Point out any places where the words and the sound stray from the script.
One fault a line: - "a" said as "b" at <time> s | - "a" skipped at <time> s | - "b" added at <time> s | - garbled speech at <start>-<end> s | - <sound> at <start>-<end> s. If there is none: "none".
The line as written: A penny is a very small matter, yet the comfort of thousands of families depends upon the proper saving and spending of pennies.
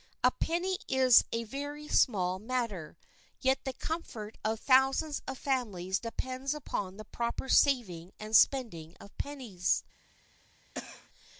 - cough at 10.7-11.1 s